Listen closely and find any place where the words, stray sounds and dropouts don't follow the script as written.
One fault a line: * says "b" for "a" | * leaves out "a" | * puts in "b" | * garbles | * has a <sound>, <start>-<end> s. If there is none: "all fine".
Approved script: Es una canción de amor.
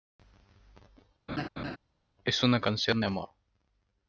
* has a laugh, 1.3-1.8 s